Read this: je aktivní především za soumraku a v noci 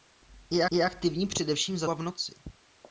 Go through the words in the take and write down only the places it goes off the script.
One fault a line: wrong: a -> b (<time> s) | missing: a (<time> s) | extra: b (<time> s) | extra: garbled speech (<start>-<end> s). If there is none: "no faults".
extra: je (0.7 s)
missing: soumraku (1.9 s)